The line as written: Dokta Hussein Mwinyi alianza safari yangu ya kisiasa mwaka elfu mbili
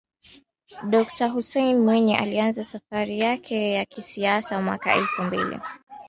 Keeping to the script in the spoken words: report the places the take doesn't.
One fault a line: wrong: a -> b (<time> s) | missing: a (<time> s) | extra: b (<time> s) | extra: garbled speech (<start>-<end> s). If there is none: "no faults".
wrong: yangu -> yake (3.2 s)